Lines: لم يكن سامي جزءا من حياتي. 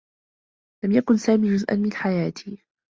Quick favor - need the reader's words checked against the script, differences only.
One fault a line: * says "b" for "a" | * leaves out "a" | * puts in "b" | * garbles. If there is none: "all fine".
all fine